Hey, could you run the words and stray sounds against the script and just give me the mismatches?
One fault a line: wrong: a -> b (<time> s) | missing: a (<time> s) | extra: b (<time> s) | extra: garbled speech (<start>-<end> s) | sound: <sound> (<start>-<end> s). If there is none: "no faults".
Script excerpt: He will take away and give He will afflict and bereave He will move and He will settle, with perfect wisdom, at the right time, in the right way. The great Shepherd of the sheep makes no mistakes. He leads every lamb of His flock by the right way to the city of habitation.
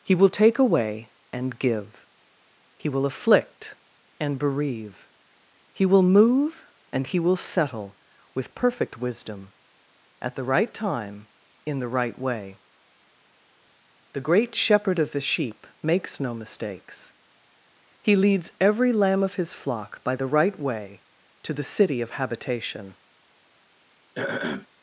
sound: throat clearing (24.2-24.7 s)